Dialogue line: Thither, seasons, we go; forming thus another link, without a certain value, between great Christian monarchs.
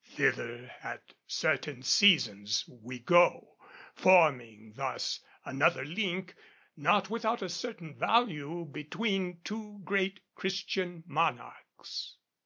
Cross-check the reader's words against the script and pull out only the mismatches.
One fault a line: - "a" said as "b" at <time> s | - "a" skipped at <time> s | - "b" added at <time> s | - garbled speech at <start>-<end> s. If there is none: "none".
- "at certain" added at 0.8 s
- "not" added at 6.7 s
- "two" added at 9.4 s